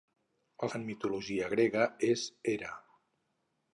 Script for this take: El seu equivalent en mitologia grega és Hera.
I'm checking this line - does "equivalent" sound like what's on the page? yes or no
no